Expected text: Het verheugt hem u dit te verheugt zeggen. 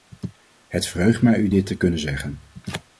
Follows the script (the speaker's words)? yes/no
no